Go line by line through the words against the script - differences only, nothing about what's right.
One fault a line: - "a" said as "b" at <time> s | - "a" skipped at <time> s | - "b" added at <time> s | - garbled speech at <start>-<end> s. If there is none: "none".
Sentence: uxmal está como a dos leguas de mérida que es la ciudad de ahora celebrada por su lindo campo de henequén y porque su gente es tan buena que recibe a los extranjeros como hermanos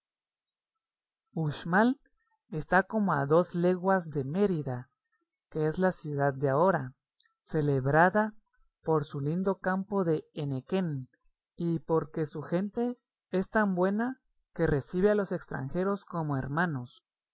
none